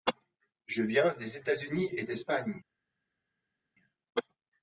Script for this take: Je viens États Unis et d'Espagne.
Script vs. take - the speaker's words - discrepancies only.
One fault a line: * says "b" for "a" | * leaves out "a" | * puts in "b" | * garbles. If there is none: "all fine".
* puts in "des"